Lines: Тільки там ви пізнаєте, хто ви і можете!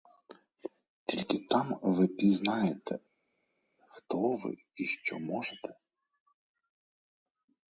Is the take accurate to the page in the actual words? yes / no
no